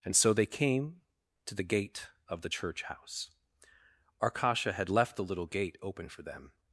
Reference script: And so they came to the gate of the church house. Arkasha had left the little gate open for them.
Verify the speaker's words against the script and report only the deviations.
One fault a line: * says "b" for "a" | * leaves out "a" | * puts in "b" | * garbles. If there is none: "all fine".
all fine